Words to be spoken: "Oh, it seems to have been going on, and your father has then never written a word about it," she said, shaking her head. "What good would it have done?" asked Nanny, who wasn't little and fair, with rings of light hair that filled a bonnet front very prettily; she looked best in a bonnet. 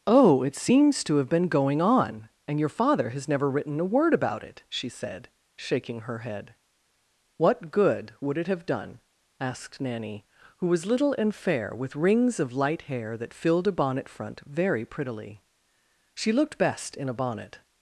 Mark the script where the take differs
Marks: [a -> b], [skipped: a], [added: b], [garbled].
"Oh, it seems to have been going on, and your father has [skipped: then] never written a word about it," she said, shaking her head. "What good would it have done?" asked Nanny, who [wasn't -> was] little and fair, with rings of light hair that filled a bonnet front very prettily; she looked best in a bonnet.